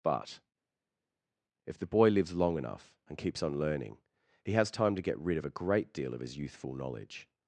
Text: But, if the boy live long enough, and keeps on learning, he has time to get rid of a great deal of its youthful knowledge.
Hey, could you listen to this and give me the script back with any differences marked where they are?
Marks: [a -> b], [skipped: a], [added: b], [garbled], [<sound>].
But, if the boy [live -> lives] long enough, and keeps on learning, he has time to get rid of a great deal of [its -> his] youthful knowledge.